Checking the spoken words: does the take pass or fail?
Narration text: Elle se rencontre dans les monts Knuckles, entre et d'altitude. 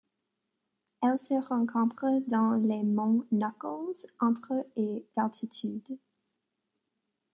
pass